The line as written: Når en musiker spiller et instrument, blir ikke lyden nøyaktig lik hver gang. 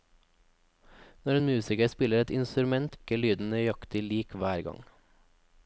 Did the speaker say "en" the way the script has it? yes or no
yes